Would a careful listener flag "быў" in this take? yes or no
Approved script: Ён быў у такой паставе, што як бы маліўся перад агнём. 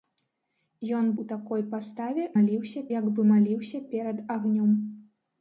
yes